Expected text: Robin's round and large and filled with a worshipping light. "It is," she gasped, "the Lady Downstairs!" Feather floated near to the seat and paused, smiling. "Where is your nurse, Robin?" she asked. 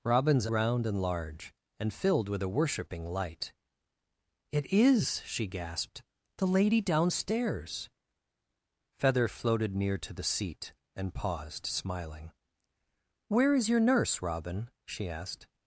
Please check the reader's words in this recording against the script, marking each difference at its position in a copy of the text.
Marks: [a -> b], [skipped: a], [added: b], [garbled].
Robin's round and large and filled with a worshipping light. "It is," she gasped, "the Lady Downstairs!" Feather floated near to the seat and paused, smiling. "Where is your nurse, Robin?" she asked.